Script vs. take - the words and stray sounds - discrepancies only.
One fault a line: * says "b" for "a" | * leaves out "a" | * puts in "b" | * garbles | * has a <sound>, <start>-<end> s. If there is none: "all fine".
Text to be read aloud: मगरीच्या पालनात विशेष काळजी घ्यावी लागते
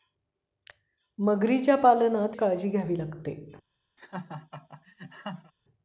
* leaves out "विशेष"
* has a laugh, 4.0-5.5 s